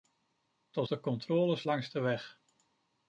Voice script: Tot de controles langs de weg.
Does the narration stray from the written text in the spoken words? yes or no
no